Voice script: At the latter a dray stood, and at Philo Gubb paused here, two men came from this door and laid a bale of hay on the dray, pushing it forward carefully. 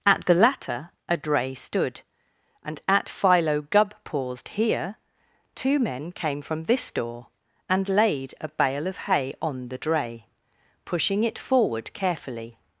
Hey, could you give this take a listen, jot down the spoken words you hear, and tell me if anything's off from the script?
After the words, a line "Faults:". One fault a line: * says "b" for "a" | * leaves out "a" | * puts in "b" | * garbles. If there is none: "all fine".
At the latter a dray stood, and at Philo Gubb paused here, two men came from this door and laid a bale of hay on the dray, pushing it forward carefully.
Faults:
all fine